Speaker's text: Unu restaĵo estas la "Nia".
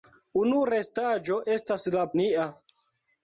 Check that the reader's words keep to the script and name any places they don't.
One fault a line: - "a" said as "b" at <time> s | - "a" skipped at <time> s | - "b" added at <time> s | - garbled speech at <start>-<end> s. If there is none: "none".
none